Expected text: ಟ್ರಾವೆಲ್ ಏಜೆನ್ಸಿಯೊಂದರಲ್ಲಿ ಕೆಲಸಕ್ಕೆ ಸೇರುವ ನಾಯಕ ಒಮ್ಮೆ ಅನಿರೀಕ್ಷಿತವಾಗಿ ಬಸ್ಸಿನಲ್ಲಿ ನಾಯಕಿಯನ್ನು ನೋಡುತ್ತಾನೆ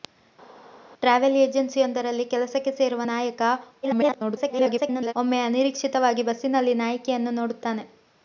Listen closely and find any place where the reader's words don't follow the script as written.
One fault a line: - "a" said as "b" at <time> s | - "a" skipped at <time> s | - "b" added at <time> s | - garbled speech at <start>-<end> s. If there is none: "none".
- garbled speech at 3.8-5.1 s